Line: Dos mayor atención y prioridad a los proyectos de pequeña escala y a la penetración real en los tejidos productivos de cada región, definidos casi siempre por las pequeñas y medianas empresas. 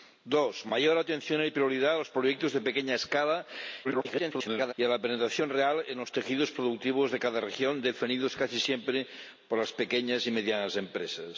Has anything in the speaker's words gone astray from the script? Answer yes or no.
yes